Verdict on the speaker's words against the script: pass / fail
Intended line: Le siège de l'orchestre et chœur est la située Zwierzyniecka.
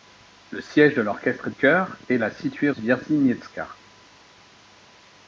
pass